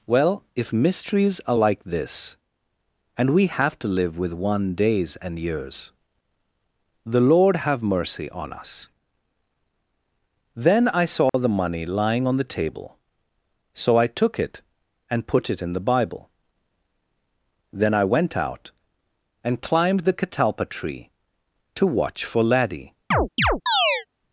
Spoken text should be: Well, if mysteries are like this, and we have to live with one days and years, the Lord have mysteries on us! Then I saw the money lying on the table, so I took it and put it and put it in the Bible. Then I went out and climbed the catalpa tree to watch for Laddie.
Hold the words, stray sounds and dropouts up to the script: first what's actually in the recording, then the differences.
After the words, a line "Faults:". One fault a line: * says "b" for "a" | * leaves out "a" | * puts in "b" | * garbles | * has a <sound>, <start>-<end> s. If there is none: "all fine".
Well, if mysteries are like this, and we have to live with one days and years, the Lord have mercy on us! Then I saw the money lying on the table, so I took it and put it in the Bible. Then I went out and climbed the catalpa tree to watch for Laddie.
Faults:
* says "mercy" for "mysteries"
* has a dropout, 11.3-11.3 s
* leaves out "and put it"
* has a chirp, 23.1-24.1 s